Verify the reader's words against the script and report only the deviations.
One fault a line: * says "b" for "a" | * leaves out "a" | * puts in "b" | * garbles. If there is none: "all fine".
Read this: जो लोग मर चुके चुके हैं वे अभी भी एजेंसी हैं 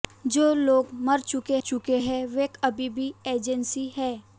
all fine